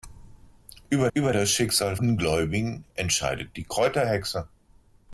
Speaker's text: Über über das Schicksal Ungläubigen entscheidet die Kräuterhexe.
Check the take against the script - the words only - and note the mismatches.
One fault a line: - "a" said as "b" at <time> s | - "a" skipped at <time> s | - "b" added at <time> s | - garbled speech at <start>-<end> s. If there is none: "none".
none